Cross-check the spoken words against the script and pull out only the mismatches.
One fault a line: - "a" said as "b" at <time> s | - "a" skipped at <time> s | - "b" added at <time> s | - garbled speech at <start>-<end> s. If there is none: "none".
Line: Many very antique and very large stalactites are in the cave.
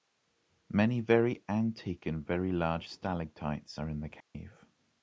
none